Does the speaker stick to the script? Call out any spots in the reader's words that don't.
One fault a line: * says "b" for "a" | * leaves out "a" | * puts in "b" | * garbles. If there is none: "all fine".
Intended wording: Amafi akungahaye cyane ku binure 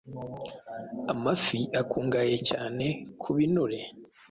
all fine